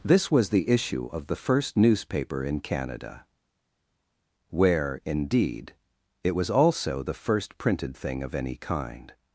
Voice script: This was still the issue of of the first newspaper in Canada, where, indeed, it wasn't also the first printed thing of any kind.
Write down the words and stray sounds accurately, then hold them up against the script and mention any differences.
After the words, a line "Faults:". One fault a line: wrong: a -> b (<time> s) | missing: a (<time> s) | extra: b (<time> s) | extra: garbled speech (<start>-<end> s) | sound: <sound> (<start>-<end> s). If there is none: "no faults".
This was the issue of the first newspaper in Canada, where, indeed, it was also the first printed thing of any kind.
Faults:
missing: still (0.5 s)
missing: of (1.3 s)
wrong: wasn't -> was (6.3 s)